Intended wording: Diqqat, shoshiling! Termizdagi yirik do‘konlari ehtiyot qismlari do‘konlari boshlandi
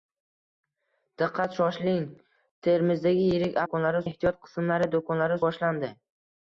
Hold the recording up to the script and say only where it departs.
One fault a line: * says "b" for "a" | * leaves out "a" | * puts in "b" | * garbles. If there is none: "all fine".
all fine